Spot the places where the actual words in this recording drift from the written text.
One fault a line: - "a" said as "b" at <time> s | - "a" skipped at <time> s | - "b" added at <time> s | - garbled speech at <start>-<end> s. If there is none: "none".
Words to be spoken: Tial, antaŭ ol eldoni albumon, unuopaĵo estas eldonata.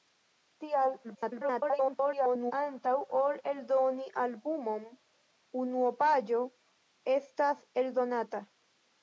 - garbled speech at 1.0-2.5 s